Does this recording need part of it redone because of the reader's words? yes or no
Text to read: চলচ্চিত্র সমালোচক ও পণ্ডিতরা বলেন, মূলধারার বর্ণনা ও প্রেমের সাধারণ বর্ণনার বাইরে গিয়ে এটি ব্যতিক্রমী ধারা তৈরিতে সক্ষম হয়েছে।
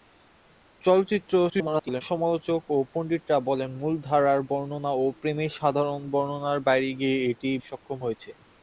yes